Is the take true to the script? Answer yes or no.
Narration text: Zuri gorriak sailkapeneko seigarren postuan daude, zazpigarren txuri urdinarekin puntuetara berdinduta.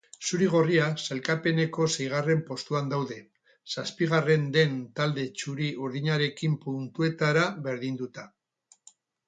no